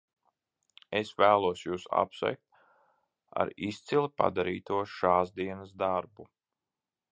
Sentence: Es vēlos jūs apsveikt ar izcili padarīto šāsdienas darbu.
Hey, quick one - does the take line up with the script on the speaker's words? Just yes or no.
yes